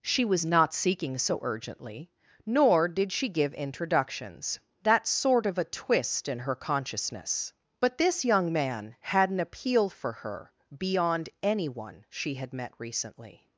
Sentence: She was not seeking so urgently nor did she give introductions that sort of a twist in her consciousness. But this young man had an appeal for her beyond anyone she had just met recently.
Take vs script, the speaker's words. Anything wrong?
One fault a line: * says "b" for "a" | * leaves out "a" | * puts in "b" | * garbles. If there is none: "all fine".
* leaves out "just"